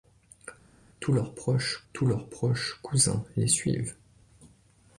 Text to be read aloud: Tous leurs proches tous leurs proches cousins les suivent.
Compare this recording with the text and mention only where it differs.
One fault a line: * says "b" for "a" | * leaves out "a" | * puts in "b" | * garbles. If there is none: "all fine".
all fine